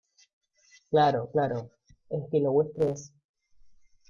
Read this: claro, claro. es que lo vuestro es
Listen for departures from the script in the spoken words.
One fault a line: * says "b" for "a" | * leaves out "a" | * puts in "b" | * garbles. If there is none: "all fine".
all fine